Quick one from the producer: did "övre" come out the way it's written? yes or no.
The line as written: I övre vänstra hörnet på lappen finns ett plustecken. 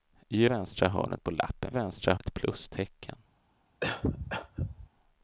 no